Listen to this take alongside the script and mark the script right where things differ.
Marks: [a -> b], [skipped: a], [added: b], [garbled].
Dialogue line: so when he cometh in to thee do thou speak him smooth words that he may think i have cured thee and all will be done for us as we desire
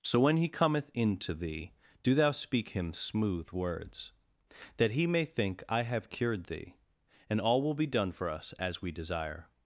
so when he cometh in to thee do thou speak him smooth words that he may think i have cured thee and all will be done for us as we desire